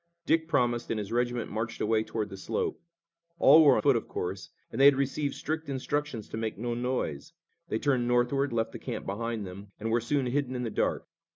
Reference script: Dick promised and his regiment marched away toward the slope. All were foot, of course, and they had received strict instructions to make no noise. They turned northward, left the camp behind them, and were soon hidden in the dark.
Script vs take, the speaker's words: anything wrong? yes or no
no